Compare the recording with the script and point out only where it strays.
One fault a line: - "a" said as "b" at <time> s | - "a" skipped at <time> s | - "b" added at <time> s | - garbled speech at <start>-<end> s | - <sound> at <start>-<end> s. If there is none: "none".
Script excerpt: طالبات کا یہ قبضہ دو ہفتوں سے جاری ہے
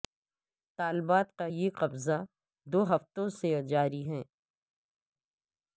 none